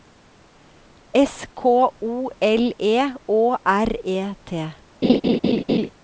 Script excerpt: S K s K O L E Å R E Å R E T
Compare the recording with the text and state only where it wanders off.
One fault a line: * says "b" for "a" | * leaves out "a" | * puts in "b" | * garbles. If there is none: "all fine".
* leaves out "s K"
* leaves out "Å R E"